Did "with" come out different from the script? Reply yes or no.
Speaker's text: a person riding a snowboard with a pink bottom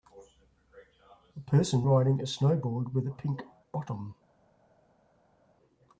no